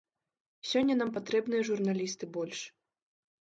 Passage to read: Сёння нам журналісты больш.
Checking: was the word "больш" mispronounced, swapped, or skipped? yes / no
no